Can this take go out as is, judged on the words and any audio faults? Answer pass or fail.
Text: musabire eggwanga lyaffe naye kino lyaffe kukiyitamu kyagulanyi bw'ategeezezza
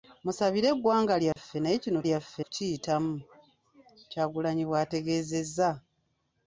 fail